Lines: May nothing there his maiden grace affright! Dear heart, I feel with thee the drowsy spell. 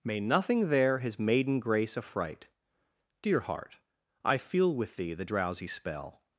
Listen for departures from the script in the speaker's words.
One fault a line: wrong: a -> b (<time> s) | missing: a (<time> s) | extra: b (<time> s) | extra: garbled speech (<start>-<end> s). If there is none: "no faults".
no faults